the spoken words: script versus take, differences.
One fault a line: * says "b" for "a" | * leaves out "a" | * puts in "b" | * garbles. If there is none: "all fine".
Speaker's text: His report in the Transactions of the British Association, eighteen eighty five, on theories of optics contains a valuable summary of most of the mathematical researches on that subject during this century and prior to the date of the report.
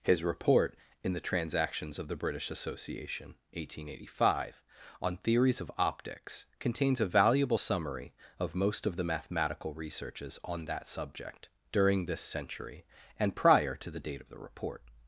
all fine